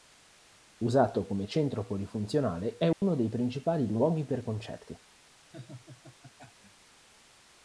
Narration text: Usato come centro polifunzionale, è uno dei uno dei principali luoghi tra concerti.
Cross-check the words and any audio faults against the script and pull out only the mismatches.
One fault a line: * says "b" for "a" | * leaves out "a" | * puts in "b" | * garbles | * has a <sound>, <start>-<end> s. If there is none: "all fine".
* has a dropout, 2.9-3.0 s
* leaves out "uno dei"
* says "per" for "tra"
* has a laugh, 5.5-6.9 s